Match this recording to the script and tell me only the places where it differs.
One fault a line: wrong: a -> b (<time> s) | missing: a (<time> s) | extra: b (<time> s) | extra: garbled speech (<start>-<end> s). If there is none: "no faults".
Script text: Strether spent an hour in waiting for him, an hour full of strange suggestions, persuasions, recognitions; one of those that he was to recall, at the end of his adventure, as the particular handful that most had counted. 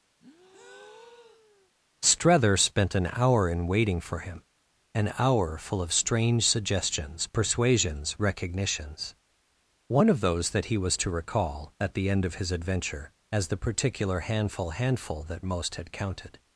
extra: handful (14.7 s)